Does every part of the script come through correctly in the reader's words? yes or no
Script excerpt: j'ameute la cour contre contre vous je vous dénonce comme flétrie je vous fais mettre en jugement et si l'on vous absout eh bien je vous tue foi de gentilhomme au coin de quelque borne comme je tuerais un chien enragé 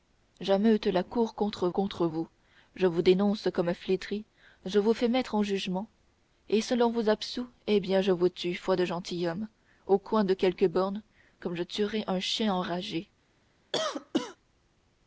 yes